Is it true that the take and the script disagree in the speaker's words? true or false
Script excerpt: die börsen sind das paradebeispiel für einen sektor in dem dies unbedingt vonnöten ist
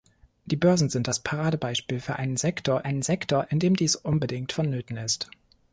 true